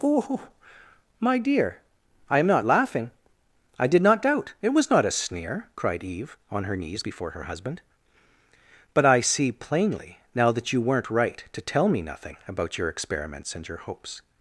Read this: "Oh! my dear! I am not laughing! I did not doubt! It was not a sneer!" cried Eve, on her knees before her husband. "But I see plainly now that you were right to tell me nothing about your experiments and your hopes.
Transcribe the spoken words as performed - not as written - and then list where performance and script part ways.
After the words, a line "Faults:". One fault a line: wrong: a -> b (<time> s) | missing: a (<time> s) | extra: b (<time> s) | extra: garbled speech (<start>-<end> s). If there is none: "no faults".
"Oh! my dear! I am not laughing! I did not doubt! It was not a sneer!" cried Eve, on her knees before her husband. "But I see plainly now that you weren't right to tell me nothing about your experiments and your hopes.
Faults:
wrong: were -> weren't (10.8 s)